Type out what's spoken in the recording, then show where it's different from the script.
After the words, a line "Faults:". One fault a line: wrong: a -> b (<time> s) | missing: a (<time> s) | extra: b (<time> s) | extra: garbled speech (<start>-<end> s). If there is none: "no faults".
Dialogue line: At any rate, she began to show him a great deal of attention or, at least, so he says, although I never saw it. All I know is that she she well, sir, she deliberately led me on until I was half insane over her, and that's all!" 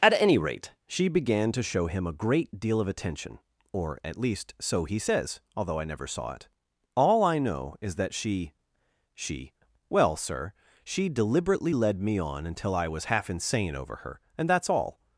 At any rate, she began to show him a great deal of attention or, at least, so he says, although I never saw it. All I know is that she she well, sir, she deliberately led me on until I was half insane over her, and that's all!"
Faults:
no faults